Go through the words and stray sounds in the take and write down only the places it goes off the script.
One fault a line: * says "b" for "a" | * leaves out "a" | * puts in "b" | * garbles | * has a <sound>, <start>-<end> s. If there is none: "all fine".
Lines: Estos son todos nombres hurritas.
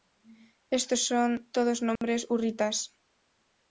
* has a dropout, 2.0-2.0 s